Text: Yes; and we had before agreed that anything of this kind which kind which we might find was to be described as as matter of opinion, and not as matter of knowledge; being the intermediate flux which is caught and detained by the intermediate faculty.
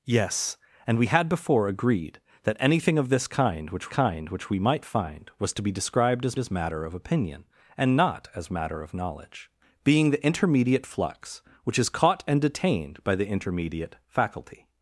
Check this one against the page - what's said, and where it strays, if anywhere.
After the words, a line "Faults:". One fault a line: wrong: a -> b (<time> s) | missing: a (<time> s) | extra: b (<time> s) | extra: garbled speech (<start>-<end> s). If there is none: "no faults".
Yes; and we had before agreed that anything of this kind which kind which we might find was to be described as as matter of opinion, and not as matter of knowledge; being the intermediate flux which is caught and detained by the intermediate faculty.
Faults:
no faults